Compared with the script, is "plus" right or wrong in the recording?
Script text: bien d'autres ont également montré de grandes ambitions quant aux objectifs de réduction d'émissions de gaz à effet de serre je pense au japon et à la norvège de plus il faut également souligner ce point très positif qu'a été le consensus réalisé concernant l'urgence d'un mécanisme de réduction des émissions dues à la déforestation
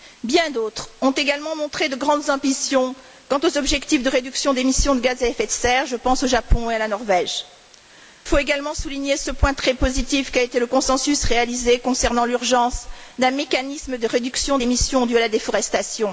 wrong